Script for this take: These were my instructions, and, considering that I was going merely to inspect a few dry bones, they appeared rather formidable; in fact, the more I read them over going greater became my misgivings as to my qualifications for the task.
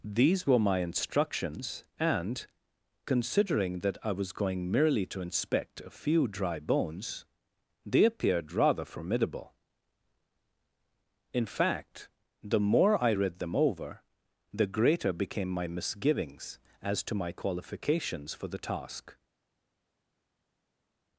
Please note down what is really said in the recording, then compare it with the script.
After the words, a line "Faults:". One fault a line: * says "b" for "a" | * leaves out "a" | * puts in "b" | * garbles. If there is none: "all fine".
These were my instructions, and, considering that I was going merely to inspect a few dry bones, they appeared rather formidable; in fact, the more I read them over the greater became my misgivings as to my qualifications for the task.
Faults:
* says "the" for "going"